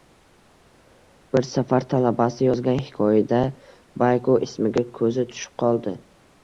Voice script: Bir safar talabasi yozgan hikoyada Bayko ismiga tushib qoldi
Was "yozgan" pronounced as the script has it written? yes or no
yes